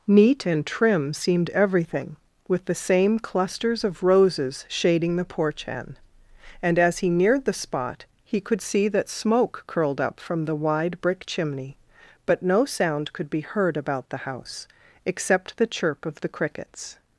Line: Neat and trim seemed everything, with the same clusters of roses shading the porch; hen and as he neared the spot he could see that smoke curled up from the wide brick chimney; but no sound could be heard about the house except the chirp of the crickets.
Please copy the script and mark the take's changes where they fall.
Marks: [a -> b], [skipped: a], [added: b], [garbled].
Neat and trim seemed everything, with the same clusters of roses shading the porch; hen and as he neared the spot he could see that smoke curled up from the wide brick chimney; but no sound could be heard about the house except the chirp of the crickets.